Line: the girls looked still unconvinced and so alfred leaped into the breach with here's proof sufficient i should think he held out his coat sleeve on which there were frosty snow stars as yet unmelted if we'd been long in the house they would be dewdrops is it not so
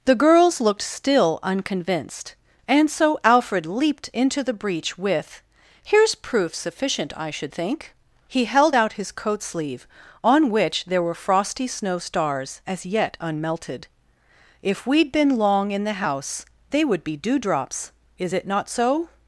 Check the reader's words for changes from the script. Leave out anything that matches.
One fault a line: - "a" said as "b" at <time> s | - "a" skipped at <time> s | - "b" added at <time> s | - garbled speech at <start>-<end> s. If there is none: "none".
none